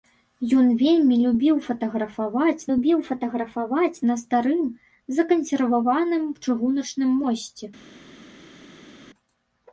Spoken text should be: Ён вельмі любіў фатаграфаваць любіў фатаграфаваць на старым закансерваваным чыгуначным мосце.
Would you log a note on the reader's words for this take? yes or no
no